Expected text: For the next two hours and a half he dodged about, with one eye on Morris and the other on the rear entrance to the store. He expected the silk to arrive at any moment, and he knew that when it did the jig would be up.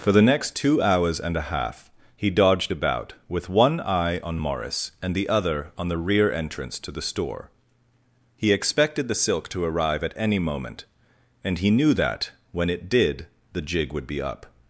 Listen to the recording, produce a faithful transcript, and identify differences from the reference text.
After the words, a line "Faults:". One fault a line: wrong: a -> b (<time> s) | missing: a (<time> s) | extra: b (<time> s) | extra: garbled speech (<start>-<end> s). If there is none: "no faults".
For the next two hours and a half he dodged about, with one eye on Morris and the other on the rear entrance to the store. He expected the silk to arrive at any moment, and he knew that when it did the jig would be up.
Faults:
no faults